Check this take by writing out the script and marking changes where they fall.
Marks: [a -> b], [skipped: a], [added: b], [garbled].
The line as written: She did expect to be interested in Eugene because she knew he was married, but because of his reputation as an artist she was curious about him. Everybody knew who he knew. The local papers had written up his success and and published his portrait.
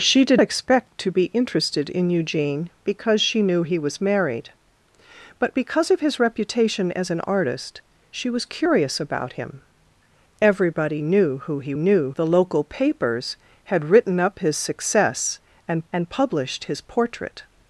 She did expect to be interested in Eugene because she knew he was married, but because of his reputation as an artist she was curious about him. Everybody knew who he knew. The local papers had written up his success and and published his portrait.